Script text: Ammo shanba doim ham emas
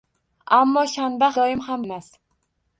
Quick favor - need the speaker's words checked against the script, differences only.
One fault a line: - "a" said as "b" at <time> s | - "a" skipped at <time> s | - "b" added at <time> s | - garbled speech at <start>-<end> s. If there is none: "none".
none